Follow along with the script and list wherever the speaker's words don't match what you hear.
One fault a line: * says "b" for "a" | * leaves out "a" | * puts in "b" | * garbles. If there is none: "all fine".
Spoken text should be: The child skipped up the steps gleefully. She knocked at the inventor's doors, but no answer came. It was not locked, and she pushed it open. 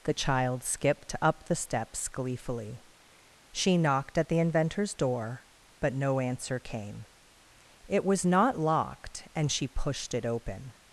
* says "door" for "doors"